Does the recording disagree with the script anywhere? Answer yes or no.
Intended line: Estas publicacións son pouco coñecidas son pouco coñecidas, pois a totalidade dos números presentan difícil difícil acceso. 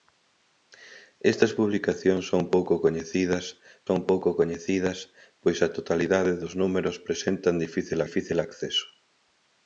no